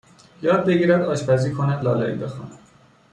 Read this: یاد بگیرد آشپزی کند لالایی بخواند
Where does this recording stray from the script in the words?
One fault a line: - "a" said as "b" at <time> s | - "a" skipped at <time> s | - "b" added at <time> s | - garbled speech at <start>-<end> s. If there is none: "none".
none